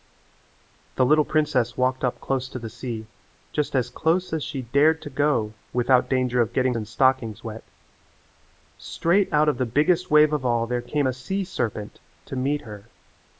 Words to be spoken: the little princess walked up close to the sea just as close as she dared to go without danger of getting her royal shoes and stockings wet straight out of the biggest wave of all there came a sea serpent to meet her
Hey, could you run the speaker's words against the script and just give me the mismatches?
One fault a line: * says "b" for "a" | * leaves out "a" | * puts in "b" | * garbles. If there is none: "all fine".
* leaves out "her royal shoes"